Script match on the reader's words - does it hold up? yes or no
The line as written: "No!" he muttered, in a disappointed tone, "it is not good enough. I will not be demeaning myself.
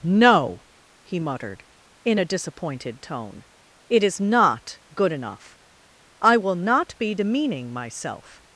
yes